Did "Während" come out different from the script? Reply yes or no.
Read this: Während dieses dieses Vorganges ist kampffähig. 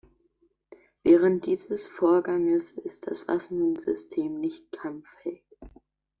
no